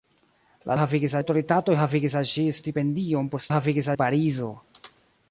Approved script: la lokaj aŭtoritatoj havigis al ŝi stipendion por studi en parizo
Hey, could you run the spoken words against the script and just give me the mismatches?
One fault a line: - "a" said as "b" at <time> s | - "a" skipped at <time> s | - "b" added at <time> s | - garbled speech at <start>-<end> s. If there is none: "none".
- "lokaj" said as "havigis" at 0.8 s
- "studi" said as "havigis" at 3.5 s